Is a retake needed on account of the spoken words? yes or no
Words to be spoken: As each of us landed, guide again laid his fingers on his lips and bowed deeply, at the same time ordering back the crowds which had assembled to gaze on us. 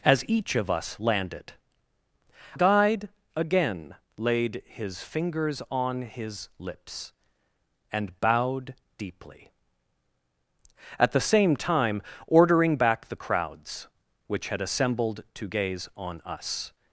no